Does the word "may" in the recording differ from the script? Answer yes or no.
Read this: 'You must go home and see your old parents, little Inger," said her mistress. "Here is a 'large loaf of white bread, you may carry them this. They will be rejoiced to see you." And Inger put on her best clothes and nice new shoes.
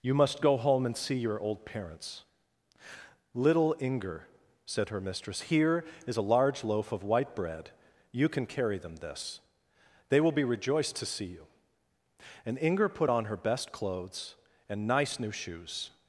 yes